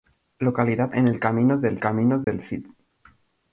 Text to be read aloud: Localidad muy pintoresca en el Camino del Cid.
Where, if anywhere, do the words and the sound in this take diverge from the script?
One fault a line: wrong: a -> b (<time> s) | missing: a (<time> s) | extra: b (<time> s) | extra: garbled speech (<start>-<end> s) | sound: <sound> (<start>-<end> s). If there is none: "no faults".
wrong: muy pintoresca en el -> en el Camino del (0.9 s)
sound: dropout (2.2-2.3 s)